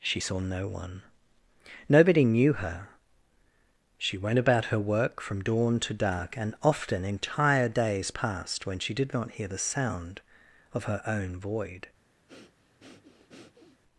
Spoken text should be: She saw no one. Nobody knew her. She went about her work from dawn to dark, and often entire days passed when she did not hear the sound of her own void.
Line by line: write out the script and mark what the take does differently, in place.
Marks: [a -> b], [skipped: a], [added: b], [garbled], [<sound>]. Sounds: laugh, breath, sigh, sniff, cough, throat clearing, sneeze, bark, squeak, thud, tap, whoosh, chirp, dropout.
She saw no one. Nobody knew her. She went about her work from dawn to dark, and often entire days passed when she did not hear the sound of her own void. [breath]